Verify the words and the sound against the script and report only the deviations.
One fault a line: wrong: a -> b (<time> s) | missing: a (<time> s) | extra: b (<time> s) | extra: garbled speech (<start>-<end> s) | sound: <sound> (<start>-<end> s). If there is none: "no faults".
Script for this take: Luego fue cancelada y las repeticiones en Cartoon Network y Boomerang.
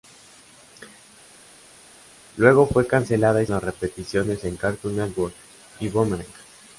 no faults